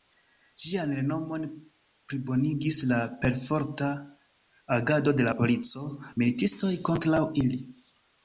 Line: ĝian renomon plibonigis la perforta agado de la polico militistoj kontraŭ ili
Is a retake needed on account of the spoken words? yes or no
no